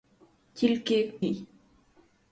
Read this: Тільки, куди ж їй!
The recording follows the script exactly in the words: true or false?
false